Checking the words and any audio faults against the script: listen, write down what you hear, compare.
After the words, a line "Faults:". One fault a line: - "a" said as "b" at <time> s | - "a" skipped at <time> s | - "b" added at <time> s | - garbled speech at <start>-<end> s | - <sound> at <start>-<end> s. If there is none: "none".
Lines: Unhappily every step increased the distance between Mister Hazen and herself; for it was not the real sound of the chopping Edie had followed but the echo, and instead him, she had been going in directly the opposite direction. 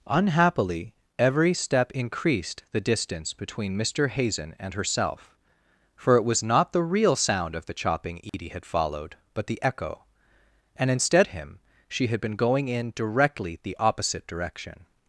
Unhappily every step increased the distance between Mister Hazen and herself; for it was not the real sound of the chopping Edie had followed but the echo, and instead him, she had been going in directly the opposite direction.
Faults:
- dropout at 8.3-8.3 s